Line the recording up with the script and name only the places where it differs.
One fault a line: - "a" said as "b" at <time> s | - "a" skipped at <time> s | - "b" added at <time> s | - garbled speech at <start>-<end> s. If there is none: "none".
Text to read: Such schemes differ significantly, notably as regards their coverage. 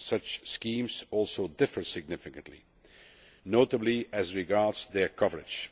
- "also" added at 1.1 s